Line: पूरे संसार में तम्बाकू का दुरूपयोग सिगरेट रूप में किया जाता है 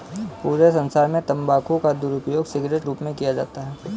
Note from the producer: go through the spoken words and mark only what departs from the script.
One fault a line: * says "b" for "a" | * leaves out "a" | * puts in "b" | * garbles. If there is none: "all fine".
all fine